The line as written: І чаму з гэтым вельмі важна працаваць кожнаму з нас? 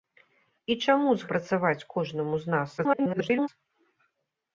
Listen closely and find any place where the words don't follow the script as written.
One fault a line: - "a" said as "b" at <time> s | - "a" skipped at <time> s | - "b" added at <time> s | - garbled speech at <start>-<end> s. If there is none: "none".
- "гэтым вельмі важна" skipped at 1.3 s
- garbled speech at 2.8-3.5 s